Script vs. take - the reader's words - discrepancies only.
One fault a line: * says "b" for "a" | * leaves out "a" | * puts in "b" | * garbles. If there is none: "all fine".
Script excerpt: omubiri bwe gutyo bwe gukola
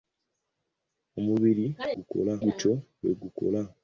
* says "gukola" for "bwe"